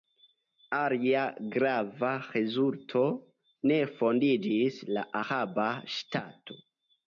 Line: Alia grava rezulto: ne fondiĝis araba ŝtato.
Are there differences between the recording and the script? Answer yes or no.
yes